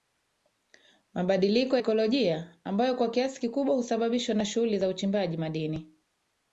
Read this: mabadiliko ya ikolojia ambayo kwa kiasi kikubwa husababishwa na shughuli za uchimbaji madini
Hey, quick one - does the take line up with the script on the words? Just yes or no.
no